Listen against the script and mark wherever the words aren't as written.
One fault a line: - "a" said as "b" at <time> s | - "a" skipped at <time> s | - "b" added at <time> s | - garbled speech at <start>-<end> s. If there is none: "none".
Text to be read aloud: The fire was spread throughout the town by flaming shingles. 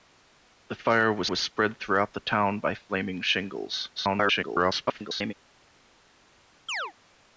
- "was" added at 1.2 s
- garbled speech at 4.0-5.3 s